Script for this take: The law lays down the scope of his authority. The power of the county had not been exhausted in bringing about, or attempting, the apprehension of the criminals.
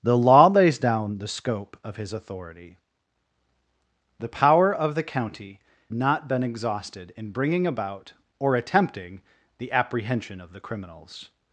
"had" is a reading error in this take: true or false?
true